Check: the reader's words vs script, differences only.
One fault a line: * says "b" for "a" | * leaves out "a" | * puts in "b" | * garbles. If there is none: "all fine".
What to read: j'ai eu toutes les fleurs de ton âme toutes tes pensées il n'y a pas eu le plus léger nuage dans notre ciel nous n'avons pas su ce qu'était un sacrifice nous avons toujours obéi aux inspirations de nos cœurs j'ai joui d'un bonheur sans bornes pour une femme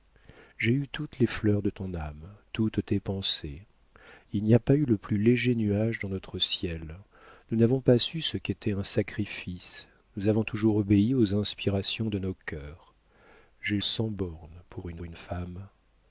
* leaves out "joui d'un bonheur"
* puts in "une"